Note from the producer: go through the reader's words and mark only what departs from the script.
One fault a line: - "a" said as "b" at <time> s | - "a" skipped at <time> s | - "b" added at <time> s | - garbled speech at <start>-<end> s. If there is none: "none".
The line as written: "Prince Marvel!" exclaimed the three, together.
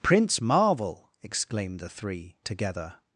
none